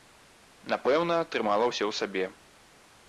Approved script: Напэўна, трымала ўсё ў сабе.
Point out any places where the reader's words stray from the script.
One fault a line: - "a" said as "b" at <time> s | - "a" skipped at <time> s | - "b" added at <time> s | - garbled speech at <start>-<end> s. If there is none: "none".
none